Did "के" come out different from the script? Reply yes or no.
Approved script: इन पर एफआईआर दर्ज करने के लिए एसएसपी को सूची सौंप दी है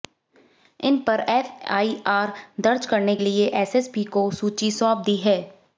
yes